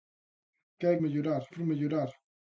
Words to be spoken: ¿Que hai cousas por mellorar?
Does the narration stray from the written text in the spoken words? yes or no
yes